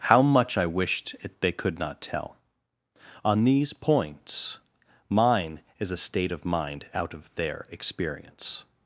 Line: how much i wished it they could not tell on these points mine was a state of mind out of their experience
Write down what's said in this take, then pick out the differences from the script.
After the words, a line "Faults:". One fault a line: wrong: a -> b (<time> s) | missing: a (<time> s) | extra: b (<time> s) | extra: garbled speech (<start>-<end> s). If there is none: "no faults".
how much i wished it they could not tell on these points mine is a state of mind out of their experience
Faults:
wrong: was -> is (5.8 s)